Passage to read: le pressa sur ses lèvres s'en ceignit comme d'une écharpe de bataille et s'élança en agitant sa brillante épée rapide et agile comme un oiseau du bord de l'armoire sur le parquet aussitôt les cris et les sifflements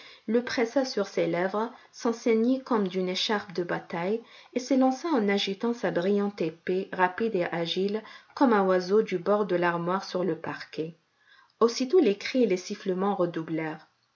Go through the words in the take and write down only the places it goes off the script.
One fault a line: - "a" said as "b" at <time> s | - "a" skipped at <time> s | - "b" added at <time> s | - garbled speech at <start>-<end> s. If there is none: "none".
none